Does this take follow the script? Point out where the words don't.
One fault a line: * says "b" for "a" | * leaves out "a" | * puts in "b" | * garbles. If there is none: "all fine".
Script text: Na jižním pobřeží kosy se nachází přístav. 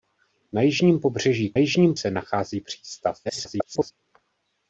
* says "jižním" for "kosy"
* garbles